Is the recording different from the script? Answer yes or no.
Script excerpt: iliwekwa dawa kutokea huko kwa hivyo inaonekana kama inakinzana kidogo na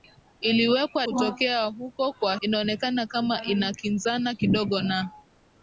yes